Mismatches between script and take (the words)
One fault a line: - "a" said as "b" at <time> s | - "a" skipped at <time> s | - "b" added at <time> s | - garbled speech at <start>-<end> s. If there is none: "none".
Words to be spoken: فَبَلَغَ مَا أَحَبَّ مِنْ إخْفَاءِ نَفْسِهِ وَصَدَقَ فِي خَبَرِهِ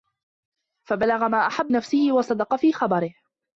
- "مِنْ إخْفَاءِ" skipped at 1.7 s